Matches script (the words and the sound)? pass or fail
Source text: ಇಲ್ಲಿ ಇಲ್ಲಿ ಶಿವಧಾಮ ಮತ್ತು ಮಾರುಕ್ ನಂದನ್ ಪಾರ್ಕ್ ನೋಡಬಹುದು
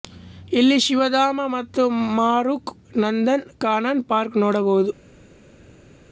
fail